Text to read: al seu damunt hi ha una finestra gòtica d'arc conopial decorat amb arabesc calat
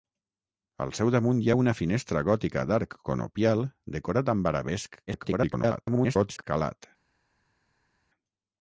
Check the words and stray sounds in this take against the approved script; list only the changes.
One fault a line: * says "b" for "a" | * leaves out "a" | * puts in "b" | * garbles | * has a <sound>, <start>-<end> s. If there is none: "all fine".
* garbles